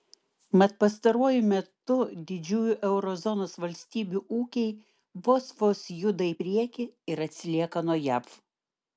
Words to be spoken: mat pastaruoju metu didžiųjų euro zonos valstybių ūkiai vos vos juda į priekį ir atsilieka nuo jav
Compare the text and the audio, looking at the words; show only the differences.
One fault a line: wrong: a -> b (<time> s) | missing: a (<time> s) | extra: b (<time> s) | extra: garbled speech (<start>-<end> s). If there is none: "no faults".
no faults